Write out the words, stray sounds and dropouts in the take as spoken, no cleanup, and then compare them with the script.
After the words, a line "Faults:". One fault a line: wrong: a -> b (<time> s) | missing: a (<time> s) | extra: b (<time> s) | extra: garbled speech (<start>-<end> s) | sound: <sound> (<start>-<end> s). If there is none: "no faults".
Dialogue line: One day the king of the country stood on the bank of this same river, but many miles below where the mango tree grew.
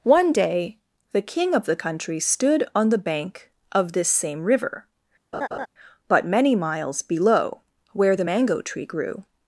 One day the king of the country stood on the bank of this same river, but many miles below where the mango tree grew.
Faults:
sound: laugh (5.3-5.7 s)